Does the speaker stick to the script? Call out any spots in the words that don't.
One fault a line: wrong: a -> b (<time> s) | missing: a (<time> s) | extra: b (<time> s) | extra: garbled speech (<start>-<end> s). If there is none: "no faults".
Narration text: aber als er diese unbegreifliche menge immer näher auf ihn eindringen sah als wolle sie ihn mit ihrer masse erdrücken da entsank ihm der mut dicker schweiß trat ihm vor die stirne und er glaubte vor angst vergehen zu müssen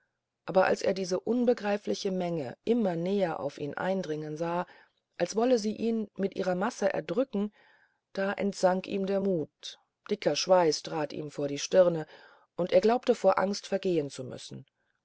no faults